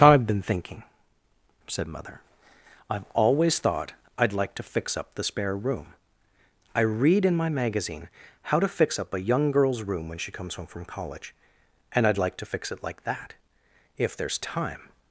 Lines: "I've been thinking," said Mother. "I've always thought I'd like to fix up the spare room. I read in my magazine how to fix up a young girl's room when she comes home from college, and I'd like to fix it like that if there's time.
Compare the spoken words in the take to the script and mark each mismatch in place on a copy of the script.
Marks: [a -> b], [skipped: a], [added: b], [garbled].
"I've been thinking," said Mother. "I've always thought I'd like to fix up the spare room. I read in my magazine how to fix up a young girl's room when she comes home from college, and I'd like to fix it like that if there's time.